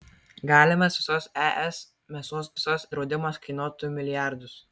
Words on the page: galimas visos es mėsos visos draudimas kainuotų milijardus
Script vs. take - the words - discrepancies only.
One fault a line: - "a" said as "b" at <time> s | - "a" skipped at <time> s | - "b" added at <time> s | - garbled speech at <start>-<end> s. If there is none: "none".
none